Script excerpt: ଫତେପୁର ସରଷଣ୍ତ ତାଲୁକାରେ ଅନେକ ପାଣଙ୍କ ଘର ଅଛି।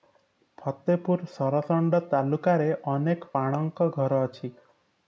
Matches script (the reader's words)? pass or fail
pass